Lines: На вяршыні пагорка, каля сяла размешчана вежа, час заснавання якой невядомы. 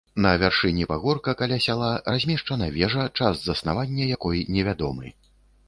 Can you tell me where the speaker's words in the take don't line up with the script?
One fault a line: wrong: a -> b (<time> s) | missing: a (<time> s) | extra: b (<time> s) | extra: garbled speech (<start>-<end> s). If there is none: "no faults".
no faults